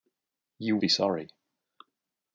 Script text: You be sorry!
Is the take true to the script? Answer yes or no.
yes